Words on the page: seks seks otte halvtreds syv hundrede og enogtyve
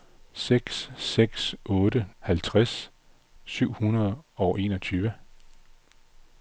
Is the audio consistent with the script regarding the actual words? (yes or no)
yes